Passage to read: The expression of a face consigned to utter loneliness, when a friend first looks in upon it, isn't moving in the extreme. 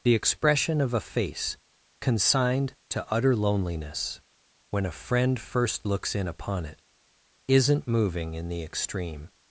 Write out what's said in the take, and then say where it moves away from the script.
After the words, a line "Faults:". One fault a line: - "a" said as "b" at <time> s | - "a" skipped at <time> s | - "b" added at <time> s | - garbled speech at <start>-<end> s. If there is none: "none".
The expression of a face consigned to utter loneliness, when a friend first looks in upon it, isn't moving in the extreme.
Faults:
none